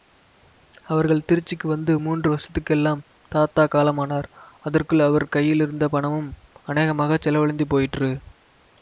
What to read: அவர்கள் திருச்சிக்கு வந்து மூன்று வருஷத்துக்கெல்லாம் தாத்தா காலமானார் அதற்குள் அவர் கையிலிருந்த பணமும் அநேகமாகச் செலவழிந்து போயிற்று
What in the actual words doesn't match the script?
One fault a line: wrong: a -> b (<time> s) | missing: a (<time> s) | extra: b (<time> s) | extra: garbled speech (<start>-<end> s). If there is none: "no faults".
no faults